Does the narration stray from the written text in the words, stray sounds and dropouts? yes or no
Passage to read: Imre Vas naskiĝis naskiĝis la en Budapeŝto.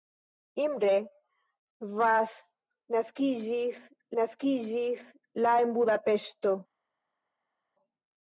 no